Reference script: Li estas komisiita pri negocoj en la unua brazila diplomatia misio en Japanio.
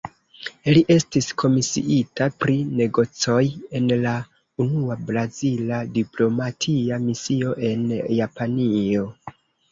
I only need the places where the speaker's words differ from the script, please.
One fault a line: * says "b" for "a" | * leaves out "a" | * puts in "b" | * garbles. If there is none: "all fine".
* says "estis" for "estas"